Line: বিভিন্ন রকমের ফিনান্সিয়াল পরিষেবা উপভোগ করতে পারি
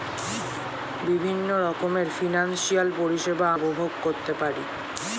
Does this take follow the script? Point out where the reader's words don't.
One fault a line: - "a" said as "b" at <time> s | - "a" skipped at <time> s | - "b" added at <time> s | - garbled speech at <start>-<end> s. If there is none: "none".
none